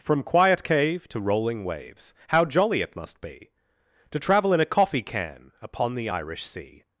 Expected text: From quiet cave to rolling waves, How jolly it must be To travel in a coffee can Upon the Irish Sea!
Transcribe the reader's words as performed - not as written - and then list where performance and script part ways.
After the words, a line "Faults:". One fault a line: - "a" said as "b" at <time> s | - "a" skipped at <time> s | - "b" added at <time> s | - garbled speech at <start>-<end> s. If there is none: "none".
From quiet cave to rolling waves, How jolly it must be To travel in a coffee can Upon the Irish Sea!
Faults:
none